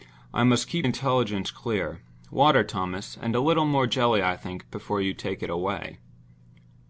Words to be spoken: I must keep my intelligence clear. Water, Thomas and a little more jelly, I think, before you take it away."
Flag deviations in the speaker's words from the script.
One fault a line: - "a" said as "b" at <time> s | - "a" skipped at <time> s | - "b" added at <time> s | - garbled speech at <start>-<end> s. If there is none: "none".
- "my" skipped at 0.9 s